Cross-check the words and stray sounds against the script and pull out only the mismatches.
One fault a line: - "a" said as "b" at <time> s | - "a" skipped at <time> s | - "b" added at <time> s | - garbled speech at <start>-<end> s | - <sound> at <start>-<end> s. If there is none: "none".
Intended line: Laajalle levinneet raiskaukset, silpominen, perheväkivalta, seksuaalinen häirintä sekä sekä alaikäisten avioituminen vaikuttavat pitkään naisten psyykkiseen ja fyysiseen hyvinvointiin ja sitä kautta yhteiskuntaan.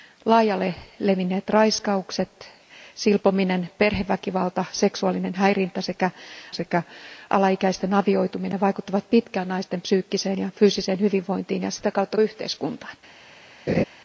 - laugh at 13.7-13.8 s